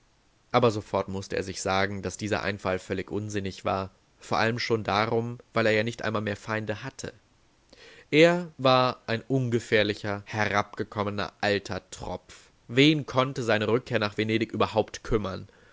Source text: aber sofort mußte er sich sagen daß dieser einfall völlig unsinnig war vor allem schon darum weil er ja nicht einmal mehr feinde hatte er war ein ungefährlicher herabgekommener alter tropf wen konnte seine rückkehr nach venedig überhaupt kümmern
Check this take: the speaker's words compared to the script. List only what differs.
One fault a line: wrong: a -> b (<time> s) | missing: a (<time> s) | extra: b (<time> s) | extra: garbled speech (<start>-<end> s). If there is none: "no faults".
no faults